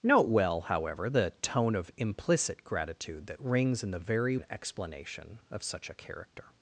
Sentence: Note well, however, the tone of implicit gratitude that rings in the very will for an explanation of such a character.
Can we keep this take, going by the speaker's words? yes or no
no